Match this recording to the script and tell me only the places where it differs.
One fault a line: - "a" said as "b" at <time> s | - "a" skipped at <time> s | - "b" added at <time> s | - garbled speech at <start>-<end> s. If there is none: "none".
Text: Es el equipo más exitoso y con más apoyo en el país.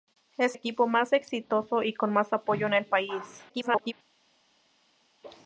- "el" skipped at 0.6 s
- garbled speech at 3.5-3.9 s